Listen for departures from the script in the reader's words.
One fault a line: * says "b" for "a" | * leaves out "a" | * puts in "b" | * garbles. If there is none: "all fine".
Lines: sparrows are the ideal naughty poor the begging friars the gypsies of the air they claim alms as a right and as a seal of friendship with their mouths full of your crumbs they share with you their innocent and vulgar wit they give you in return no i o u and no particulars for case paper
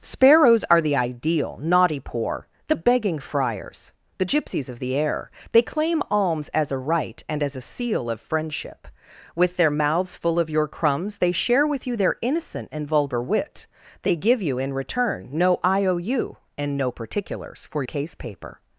all fine